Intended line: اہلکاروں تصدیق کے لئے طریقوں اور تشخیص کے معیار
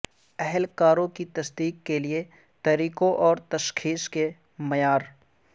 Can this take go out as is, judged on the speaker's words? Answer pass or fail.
fail